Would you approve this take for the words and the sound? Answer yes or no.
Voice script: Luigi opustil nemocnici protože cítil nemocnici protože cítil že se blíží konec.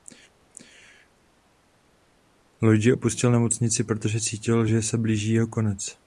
no